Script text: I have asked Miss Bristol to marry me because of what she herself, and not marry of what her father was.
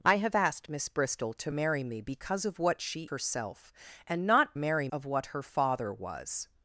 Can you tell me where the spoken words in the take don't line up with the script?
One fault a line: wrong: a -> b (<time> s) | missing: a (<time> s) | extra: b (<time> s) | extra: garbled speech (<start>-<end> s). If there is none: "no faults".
no faults